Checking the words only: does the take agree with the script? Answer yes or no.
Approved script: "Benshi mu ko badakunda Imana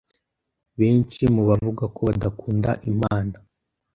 no